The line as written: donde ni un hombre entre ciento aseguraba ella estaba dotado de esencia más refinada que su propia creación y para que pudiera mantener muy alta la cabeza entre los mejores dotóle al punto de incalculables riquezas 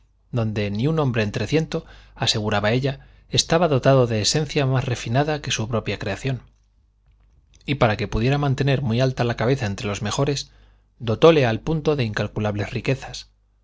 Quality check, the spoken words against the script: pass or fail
pass